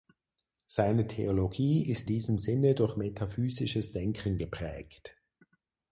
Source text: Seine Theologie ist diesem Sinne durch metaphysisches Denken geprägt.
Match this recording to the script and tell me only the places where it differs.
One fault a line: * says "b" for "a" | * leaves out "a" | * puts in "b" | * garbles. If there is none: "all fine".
all fine